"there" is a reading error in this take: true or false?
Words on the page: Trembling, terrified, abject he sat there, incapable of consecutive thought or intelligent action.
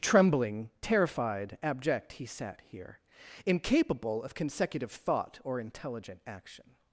true